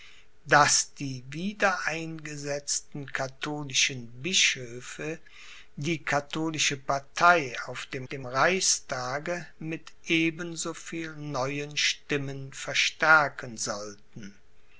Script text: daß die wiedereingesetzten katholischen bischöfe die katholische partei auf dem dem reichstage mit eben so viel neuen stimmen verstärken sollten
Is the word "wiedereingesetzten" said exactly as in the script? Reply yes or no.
yes